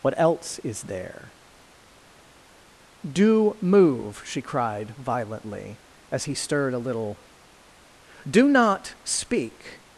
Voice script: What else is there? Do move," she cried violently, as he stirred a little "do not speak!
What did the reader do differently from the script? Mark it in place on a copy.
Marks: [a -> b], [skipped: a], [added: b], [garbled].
What else is there? Do move," she cried violently, as he stirred a little "do not speak!